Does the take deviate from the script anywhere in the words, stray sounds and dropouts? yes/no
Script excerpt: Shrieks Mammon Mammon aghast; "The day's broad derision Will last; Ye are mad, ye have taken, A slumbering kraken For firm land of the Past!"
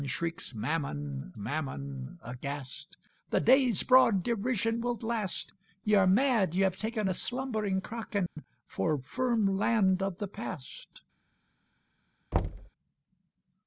yes